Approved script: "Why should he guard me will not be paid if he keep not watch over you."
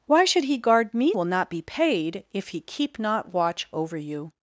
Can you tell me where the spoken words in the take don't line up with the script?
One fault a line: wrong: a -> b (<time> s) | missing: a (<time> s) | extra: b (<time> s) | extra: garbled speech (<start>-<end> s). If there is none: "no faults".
no faults